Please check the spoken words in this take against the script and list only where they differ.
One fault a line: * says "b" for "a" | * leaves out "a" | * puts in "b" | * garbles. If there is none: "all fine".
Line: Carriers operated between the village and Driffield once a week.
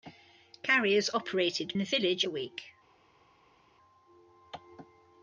* leaves out "between"
* leaves out "and Driffield once"